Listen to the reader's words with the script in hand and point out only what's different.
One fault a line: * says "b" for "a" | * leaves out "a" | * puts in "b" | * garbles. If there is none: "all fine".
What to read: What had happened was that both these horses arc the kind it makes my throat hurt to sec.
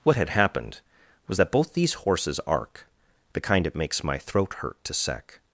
all fine